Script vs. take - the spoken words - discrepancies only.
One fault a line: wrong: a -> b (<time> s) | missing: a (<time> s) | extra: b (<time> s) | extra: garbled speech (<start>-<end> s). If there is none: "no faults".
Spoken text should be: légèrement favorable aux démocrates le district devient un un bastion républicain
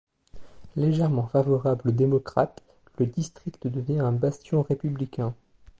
missing: un (4.1 s)